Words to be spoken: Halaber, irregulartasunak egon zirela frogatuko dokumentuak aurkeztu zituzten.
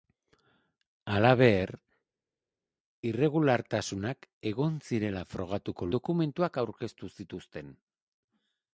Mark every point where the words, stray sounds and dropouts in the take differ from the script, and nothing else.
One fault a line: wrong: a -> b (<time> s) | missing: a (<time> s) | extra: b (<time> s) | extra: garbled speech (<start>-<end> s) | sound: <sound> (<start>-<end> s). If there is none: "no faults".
no faults